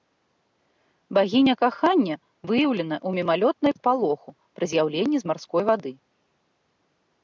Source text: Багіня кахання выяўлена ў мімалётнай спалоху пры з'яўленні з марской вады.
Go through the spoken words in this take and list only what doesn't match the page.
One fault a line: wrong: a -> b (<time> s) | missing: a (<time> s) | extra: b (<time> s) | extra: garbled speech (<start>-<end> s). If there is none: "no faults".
no faults